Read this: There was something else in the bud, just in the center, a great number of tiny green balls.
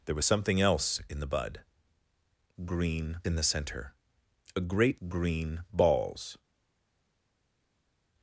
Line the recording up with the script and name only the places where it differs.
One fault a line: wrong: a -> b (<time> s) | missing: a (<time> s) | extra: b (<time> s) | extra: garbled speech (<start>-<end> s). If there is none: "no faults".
wrong: just -> green (2.6 s)
missing: number of tiny (5.0 s)